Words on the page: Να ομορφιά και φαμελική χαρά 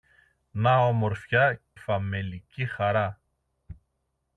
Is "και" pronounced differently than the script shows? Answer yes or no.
yes